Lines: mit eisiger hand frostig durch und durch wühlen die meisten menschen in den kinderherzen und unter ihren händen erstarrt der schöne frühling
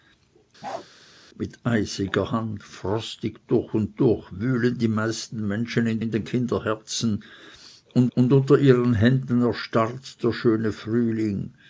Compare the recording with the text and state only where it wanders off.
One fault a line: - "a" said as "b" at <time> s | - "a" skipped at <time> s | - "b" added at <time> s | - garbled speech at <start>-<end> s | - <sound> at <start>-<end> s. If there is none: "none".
- bark at 0.6-0.9 s
- "in" added at 6.0 s
- "und" added at 8.2 s